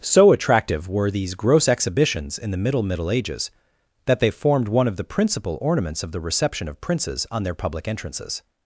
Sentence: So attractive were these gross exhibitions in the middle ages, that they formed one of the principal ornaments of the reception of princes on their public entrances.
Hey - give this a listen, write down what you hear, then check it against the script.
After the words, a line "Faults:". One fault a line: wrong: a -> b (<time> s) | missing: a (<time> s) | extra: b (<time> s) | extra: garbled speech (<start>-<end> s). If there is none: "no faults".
So attractive were these gross exhibitions in the middle middle ages, that they formed one of the principal ornaments of the reception of princes on their public entrances.
Faults:
extra: middle (2.8 s)